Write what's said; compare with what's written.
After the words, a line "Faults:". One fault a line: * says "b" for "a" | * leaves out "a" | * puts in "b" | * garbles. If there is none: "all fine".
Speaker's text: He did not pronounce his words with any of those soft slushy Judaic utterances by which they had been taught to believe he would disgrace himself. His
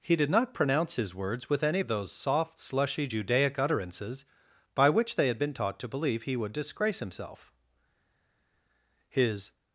He did not pronounce his words with any of those soft slushy Judaic utterances by which they had been taught to believe he would disgrace himself. His
Faults:
all fine